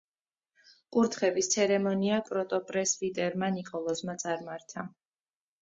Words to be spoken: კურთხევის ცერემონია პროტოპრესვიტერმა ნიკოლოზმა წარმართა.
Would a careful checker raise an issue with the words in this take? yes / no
no